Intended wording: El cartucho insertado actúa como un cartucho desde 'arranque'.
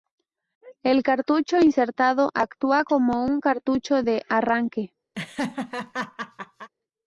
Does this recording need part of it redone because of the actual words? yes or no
yes